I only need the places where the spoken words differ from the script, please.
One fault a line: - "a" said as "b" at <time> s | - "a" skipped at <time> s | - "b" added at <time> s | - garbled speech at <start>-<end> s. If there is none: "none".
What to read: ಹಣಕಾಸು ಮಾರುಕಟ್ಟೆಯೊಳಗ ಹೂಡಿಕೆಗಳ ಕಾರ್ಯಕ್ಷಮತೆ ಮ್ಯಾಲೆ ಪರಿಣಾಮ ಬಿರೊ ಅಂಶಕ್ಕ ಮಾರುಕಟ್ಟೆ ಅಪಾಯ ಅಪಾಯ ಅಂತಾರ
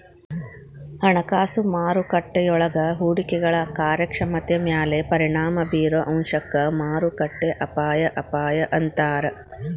none